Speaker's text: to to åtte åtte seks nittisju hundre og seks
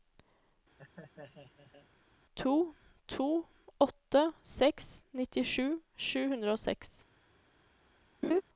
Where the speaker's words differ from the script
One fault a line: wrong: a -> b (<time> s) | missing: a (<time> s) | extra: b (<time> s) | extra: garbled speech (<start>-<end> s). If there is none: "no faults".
missing: åtte (4.2 s)
extra: sju (6.1 s)